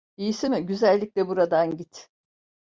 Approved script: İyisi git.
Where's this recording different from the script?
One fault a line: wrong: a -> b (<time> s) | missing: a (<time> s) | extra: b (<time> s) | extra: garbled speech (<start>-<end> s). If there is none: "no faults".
extra: mi güzellikle buradan (0.5 s)